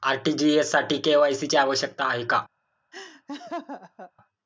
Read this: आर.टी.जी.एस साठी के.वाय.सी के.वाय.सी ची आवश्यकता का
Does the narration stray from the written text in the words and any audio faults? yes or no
yes